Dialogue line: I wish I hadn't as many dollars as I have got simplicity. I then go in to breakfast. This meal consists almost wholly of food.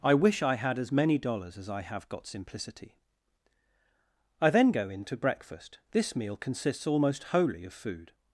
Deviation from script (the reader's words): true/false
true